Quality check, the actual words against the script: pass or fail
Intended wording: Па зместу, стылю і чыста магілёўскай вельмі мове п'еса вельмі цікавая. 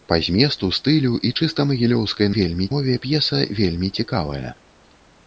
pass